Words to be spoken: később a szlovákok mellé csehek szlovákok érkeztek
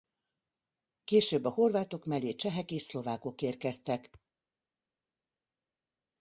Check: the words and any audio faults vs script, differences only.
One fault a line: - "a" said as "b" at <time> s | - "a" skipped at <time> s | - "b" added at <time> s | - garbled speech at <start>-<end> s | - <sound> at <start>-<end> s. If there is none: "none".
- "szlovákok" said as "horvátok" at 1.5 s
- "és" added at 2.7 s